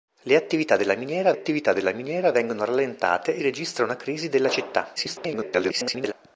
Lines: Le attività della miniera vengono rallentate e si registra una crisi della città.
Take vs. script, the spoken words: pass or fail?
fail